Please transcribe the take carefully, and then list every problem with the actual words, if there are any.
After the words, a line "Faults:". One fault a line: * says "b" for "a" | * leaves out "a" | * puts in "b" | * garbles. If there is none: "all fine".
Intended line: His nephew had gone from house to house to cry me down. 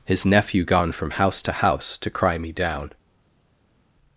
His nephew gone from house to house to cry me down.
Faults:
* leaves out "had"